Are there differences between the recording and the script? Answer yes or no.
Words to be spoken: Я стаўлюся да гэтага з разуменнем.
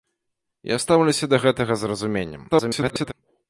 yes